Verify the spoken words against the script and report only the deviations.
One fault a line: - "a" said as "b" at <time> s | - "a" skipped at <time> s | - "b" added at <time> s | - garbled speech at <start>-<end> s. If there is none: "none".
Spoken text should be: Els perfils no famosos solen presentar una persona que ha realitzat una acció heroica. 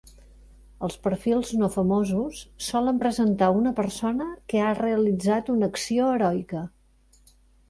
none